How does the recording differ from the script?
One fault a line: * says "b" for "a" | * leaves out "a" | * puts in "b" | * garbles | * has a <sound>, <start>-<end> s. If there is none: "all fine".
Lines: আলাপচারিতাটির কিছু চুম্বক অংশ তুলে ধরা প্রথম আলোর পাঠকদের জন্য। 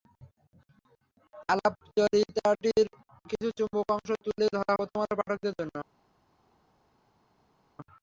all fine